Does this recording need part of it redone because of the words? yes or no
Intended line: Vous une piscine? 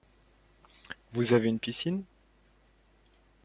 yes